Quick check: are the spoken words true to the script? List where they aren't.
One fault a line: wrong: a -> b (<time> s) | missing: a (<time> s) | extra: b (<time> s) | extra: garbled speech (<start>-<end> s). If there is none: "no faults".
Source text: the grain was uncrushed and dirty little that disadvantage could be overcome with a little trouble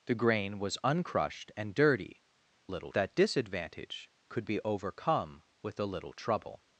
no faults